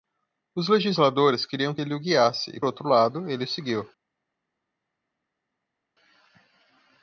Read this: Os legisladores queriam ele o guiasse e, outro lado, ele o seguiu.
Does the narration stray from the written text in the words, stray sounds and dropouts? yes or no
no